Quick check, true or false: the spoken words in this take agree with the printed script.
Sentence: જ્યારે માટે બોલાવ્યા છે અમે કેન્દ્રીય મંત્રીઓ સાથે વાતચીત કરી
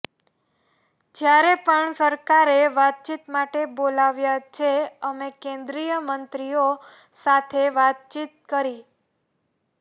false